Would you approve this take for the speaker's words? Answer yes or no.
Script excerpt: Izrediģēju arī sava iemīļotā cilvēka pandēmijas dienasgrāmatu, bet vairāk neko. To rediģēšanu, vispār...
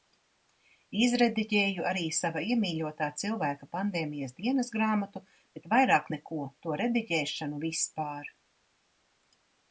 yes